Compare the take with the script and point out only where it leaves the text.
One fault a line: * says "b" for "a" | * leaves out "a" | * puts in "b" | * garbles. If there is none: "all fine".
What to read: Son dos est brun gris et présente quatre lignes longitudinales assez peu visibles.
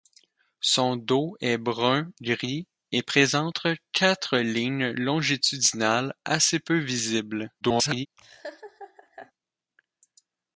* garbles